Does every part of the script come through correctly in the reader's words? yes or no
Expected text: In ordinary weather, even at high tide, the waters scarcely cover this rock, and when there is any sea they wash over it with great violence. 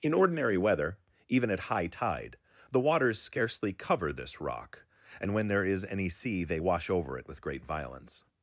yes